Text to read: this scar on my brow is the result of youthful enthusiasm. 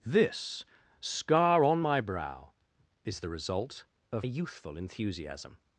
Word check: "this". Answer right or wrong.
right